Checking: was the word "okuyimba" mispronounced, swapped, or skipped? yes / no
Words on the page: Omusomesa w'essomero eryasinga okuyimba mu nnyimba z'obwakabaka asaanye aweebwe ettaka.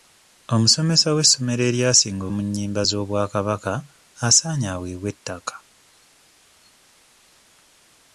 yes